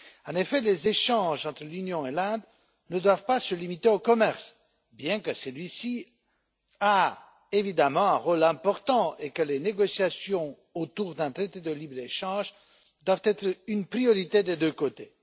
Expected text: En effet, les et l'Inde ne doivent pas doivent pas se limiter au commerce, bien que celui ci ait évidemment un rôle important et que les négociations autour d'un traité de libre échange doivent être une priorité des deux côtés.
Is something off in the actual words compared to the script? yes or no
yes